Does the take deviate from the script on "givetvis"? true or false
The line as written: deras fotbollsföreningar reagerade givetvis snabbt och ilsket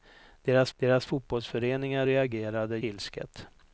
true